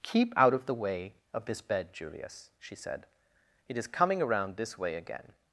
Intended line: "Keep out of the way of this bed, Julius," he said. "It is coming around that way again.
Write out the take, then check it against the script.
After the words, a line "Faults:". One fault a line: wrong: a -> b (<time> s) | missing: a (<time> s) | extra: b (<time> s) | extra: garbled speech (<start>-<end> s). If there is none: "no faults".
"Keep out of the way of this bed, Julius," she said. "It is coming around this way again.
Faults:
wrong: he -> she (2.6 s)
wrong: that -> this (4.6 s)